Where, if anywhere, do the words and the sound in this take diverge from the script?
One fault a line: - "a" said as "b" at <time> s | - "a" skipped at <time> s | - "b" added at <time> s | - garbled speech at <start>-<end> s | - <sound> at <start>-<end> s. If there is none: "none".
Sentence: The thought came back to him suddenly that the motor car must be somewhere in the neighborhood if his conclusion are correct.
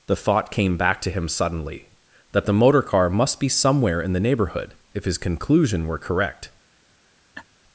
- "are" said as "were" at 5.9 s
- laugh at 7.3-7.5 s